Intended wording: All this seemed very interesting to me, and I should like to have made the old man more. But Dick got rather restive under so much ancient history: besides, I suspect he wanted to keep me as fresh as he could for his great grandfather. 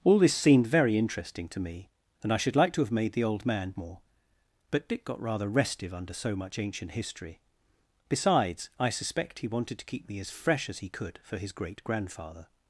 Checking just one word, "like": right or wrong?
right